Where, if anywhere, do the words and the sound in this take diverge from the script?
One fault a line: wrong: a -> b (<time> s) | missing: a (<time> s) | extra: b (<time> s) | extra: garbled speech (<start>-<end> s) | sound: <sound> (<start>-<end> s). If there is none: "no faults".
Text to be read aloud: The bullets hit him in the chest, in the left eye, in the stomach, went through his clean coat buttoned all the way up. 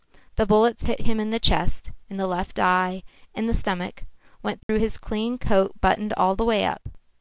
sound: dropout (4.6-4.7 s)